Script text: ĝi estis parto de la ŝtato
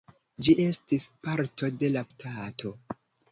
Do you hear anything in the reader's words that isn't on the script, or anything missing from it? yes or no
no